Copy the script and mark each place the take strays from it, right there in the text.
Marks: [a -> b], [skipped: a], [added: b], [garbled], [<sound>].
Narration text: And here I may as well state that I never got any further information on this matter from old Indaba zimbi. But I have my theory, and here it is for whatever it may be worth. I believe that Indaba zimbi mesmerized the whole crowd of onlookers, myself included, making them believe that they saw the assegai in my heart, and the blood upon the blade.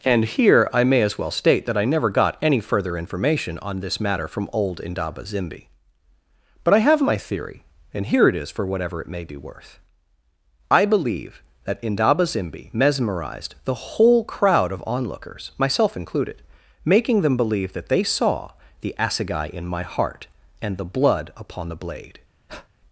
And here I may as well state that I never got any further information on this matter from old Indaba zimbi. But I have my theory, and here it is for whatever it may be worth. I believe that Indaba zimbi mesmerized the whole crowd of onlookers, myself included, making them believe that they saw the assegai in my heart, and the blood upon the blade. [breath]